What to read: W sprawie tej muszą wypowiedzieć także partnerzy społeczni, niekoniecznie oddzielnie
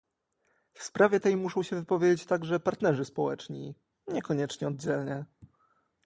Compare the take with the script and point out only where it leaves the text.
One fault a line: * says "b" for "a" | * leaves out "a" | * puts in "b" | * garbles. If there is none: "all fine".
* puts in "się"